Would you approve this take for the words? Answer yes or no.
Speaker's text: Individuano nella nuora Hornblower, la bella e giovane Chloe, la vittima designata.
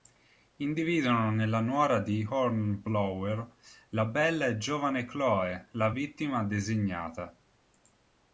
no